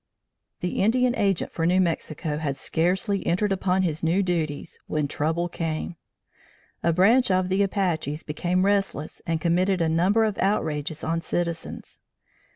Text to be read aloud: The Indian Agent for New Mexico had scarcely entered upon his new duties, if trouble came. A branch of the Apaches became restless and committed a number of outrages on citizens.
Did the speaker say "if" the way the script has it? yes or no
no